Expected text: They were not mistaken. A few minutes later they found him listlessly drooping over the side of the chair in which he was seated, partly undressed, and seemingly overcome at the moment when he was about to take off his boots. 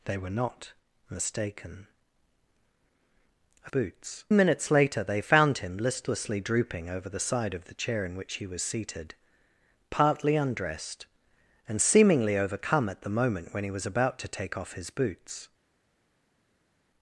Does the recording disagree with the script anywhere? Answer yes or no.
yes